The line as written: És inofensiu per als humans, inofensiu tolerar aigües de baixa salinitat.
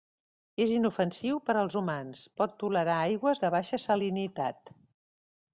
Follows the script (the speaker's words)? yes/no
no